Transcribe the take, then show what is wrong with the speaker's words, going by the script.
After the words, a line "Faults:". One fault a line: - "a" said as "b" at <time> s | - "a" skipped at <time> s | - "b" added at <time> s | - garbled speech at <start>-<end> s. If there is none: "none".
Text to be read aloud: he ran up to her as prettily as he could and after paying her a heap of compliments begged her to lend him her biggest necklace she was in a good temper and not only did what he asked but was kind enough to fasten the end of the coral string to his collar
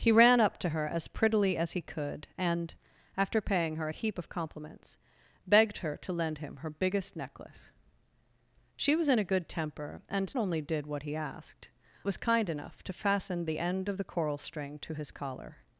he ran up to her as prettily as he could and after paying her a heap of compliments begged her to lend him her biggest necklace she was in a good temper and only did what he asked was kind enough to fasten the end of the coral string to his collar
Faults:
- "not" skipped at 10.4 s
- "but" skipped at 11.7 s